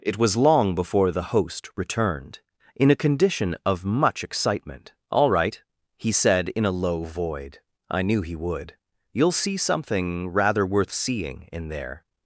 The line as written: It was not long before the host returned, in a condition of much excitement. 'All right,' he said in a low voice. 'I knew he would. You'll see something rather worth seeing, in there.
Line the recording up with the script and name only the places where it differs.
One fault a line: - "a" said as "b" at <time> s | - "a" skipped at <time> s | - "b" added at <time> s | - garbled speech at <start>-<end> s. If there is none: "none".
- "not" skipped at 0.3 s
- "voice" said as "void" at 7.0 s